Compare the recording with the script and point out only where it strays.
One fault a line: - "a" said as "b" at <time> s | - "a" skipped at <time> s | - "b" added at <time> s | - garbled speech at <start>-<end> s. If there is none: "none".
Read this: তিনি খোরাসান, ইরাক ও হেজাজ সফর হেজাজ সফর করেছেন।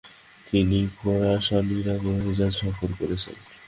- "হেজাজ সফর" skipped at 2.9 s